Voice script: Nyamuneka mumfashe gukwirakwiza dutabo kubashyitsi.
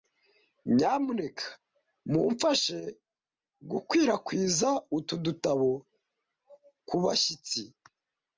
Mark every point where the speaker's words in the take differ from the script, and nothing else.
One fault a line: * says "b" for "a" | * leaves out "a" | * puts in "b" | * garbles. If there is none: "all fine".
* puts in "utu"